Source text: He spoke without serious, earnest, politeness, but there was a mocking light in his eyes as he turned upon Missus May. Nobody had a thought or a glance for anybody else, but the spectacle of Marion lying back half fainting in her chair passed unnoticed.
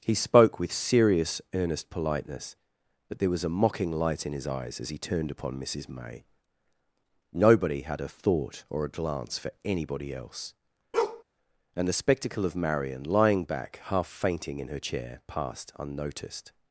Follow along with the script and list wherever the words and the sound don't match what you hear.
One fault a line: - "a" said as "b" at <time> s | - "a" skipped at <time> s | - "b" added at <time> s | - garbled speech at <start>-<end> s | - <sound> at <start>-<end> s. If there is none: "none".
- "without" said as "with" at 0.6 s
- bark at 10.9-11.2 s
- "but" said as "and" at 11.7 s